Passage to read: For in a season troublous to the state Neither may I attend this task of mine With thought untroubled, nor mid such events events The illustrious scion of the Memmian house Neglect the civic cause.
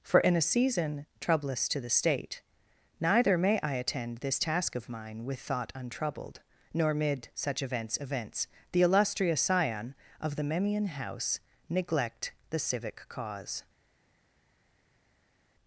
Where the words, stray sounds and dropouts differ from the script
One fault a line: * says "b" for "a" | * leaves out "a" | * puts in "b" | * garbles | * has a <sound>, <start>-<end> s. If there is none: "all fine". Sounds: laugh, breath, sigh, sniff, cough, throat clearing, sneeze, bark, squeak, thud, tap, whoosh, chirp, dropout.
all fine